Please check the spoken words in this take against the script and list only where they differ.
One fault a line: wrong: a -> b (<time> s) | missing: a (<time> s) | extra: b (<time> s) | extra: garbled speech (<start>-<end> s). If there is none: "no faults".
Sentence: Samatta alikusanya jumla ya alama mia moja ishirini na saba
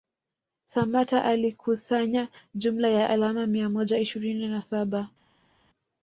no faults